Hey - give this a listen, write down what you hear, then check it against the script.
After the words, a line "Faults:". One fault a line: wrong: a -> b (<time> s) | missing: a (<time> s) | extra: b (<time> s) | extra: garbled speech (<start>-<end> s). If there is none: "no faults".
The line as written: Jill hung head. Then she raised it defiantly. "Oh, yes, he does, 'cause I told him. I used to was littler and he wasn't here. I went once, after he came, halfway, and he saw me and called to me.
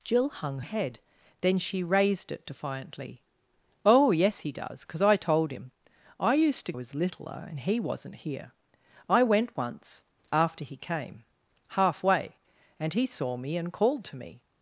Jill hung head. Then she raised it defiantly. "Oh, yes, he does, 'cause I told him. I used to was littler and he wasn't here. I went once, after he came, halfway, and he saw me and called to me.
Faults:
no faults